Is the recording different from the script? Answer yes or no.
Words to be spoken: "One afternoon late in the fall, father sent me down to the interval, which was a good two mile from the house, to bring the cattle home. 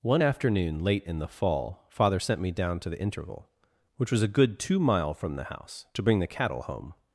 no